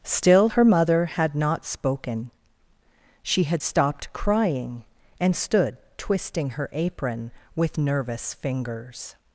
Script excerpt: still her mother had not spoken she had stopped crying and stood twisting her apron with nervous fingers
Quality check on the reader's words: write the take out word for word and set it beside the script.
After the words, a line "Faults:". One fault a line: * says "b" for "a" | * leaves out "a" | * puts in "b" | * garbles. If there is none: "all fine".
still her mother had not spoken she had stopped crying and stood twisting her apron with nervous fingers
Faults:
all fine